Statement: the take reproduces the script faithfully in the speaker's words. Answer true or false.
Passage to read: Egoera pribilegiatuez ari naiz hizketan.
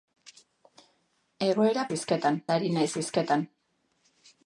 false